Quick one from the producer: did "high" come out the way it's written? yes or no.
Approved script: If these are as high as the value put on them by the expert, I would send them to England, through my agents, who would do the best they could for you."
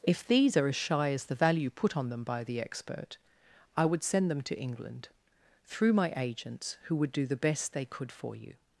no